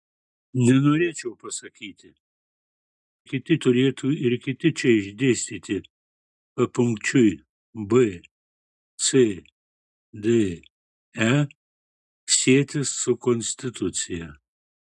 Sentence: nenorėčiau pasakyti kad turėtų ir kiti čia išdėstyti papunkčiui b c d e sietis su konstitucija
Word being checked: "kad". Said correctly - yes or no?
no